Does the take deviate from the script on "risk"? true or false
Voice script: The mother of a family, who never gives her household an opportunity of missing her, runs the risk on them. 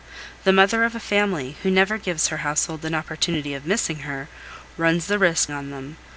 false